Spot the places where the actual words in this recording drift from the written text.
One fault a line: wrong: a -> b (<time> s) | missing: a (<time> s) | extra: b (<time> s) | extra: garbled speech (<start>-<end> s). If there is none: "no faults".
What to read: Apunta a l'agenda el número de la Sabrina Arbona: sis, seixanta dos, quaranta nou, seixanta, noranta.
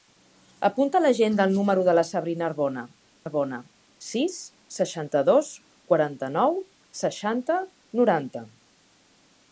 extra: Arbona (3.2 s)